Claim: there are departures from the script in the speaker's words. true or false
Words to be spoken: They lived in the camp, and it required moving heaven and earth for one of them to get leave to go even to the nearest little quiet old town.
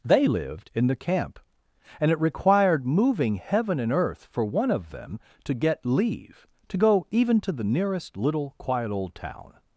false